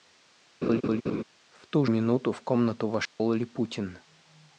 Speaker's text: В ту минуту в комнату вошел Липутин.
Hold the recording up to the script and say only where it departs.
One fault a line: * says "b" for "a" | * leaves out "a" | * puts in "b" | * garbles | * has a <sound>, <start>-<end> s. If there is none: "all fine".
* has a laugh, 0.6-1.2 s
* has a dropout, 3.1-3.2 s